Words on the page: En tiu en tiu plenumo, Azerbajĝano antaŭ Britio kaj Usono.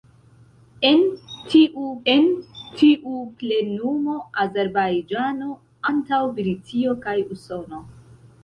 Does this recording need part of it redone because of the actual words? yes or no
no